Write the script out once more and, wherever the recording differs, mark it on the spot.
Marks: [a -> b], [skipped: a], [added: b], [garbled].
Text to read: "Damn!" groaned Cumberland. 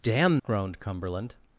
"Damn!" groaned Cumberland.